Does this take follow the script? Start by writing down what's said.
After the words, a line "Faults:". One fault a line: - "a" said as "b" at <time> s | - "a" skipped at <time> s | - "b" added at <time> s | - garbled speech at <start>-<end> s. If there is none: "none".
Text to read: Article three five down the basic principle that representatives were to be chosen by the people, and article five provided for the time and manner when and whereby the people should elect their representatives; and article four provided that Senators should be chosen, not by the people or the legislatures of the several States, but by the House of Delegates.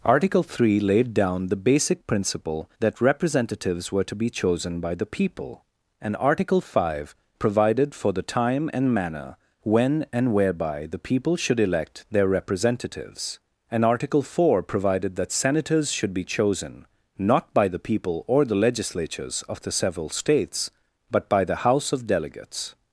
Article three laid down the basic principle that representatives were to be chosen by the people, and article five provided for the time and manner when and whereby the people should elect their representatives; and article four provided that Senators should be chosen, not by the people or the legislatures of the several States, but by the House of Delegates.
Faults:
- "five" said as "laid" at 0.8 s